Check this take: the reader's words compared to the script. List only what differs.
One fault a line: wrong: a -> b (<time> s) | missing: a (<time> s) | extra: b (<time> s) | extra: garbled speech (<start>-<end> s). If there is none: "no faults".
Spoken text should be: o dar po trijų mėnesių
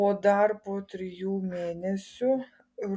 no faults